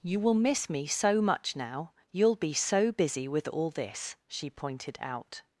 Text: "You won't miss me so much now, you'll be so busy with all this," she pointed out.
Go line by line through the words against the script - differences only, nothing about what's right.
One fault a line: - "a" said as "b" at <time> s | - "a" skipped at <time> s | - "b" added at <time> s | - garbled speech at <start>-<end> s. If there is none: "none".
- "won't" said as "will" at 0.2 s